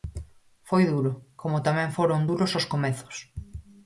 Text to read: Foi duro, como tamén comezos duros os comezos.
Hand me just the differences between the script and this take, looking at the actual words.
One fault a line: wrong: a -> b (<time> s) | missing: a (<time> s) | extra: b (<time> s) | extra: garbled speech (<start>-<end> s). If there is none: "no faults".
wrong: comezos -> foron (2.0 s)